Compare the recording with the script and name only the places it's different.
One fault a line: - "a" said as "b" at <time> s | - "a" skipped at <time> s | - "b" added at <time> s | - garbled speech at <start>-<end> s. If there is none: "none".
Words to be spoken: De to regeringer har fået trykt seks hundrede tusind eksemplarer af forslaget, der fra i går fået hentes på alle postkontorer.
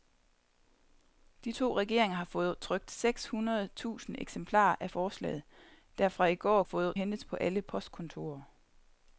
none